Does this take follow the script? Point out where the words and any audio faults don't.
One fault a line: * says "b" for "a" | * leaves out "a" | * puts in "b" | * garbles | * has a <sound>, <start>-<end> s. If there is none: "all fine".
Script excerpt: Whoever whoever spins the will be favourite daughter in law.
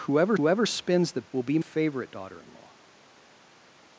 all fine